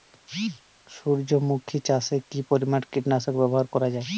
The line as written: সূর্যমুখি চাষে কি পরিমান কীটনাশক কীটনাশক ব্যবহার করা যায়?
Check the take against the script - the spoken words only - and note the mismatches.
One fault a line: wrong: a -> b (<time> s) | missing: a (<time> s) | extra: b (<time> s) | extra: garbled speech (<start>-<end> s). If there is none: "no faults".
missing: কীটনাশক (3.3 s)